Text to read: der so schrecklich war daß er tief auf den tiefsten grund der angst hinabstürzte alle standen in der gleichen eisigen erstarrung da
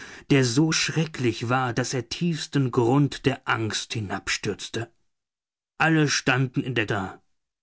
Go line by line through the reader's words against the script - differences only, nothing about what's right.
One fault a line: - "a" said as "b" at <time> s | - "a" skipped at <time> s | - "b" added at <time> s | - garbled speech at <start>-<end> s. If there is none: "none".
- "tief auf den" skipped at 2.1 s
- "gleichen eisigen erstarrung" skipped at 6.9 s